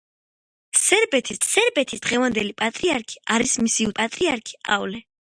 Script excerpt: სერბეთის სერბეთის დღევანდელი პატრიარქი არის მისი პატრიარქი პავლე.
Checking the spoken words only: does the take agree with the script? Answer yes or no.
yes